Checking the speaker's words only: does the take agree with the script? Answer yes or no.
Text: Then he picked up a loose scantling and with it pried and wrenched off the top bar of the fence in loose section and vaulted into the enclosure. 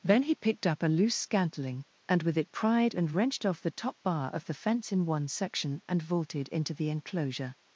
no